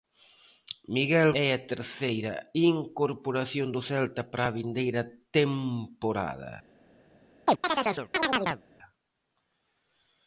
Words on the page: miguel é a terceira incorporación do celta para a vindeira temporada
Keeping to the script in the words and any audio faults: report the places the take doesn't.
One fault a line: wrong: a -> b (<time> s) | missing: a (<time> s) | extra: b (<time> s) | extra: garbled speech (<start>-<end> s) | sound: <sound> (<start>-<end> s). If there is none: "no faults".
sound: chirp (7.5-8.6 s)